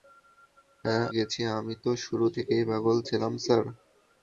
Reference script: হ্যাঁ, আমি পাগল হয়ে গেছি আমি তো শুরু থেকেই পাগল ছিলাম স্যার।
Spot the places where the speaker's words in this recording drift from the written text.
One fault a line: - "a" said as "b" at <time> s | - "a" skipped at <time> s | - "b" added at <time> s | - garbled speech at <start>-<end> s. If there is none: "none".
- "আমি পাগল হয়ে" skipped at 1.1 s